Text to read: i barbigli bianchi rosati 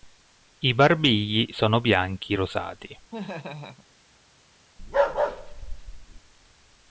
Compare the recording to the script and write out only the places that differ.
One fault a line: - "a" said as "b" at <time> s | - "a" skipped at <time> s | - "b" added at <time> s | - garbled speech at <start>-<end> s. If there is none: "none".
- "sono" added at 1.5 s